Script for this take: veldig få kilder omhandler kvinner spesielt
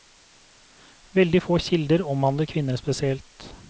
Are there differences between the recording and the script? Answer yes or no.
no